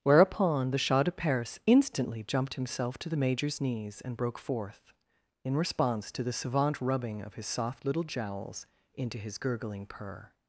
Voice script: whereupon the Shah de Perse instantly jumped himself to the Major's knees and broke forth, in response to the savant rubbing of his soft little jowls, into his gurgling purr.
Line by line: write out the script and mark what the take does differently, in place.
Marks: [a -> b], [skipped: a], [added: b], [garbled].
whereupon the Shah de Perse instantly jumped himself to the Major's knees and broke forth, in response to the savant rubbing of his soft little jowls, into his gurgling purr.